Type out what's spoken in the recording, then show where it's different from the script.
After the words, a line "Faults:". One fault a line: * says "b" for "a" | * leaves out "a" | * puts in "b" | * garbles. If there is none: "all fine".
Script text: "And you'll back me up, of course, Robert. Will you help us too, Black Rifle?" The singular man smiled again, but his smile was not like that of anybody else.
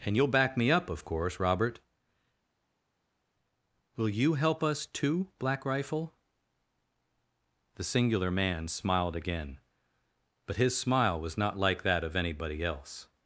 "And you'll back me up, of course, Robert. Will you help us too, Black Rifle?" The singular man smiled again, but his smile was not like that of anybody else.
Faults:
all fine